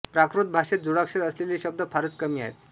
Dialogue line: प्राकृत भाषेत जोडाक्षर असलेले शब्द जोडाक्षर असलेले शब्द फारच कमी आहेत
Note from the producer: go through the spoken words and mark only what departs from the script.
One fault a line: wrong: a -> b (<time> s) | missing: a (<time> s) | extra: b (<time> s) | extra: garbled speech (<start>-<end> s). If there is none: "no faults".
missing: जोडाक्षर असलेले शब्द (1.8 s)